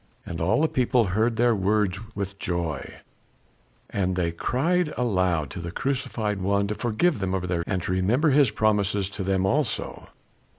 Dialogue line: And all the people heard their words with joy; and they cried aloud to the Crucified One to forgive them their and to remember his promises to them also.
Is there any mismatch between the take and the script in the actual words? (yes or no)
no